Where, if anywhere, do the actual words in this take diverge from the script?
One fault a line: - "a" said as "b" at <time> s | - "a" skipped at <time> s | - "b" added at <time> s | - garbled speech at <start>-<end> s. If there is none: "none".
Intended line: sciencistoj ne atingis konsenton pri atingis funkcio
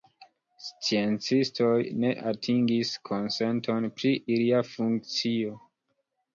- "atingis" said as "ilia" at 4.4 s